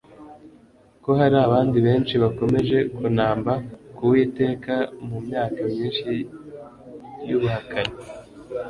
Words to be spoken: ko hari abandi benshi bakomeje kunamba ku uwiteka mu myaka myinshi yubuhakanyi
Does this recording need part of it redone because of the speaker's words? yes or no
no